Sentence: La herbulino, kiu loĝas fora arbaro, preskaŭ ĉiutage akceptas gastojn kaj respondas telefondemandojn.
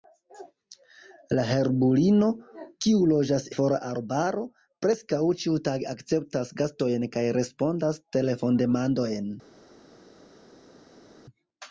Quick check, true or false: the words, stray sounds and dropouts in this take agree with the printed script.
true